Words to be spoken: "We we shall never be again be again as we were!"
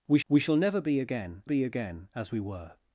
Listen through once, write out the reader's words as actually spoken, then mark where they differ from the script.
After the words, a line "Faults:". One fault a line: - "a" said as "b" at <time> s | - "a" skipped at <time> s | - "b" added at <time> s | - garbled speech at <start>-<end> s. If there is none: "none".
"We we shall never be again be again as we were!"
Faults:
none